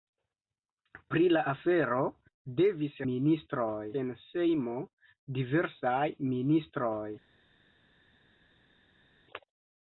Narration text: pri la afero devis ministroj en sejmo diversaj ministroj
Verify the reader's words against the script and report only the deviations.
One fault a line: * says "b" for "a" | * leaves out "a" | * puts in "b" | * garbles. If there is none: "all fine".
all fine